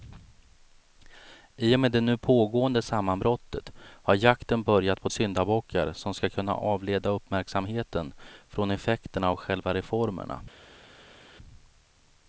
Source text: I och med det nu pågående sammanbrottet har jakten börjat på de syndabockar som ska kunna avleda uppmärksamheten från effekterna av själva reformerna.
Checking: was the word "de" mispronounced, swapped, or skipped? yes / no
yes